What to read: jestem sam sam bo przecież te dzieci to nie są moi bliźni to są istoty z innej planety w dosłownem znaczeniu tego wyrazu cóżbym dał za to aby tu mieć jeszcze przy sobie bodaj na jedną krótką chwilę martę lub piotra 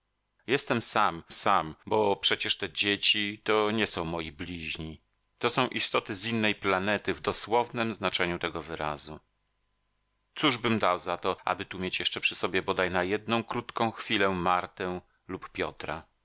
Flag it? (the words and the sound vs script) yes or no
no